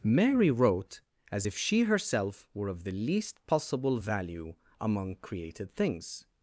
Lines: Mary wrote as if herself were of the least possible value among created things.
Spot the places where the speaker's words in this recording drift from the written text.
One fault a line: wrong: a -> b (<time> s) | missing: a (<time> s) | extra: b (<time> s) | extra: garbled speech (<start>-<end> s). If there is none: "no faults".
extra: she (1.6 s)